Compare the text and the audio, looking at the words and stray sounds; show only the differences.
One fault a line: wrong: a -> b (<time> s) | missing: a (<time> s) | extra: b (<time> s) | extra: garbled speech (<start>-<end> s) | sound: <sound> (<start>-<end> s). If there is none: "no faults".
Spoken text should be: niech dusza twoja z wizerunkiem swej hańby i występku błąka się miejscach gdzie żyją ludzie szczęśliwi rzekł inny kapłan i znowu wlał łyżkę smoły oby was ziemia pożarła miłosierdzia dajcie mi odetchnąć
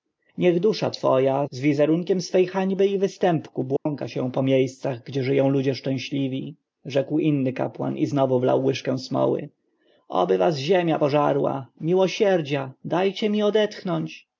sound: dropout (3.8-3.9 s)
extra: po (4.3 s)